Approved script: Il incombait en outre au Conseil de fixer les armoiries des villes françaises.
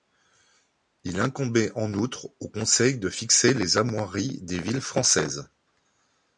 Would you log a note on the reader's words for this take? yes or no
no